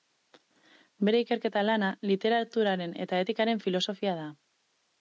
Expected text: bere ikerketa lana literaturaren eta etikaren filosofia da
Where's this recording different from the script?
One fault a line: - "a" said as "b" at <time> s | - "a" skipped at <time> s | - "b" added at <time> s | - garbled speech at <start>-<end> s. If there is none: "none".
none